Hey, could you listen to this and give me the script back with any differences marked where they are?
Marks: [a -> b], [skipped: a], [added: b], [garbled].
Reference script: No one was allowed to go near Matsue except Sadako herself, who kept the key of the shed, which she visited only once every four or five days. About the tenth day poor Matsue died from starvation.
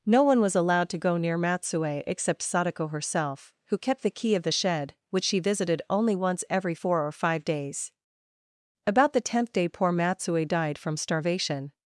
No one was allowed to go near Matsue except Sadako herself, who kept the key of the shed, which she visited only once every four or five days. About the tenth day poor Matsue died from starvation.